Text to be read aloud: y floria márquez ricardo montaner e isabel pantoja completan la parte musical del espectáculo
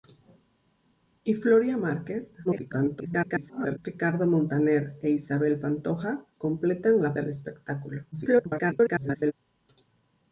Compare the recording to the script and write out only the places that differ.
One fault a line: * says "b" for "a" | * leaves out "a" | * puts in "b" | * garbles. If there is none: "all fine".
* garbles
* leaves out "parte musical"
* garbles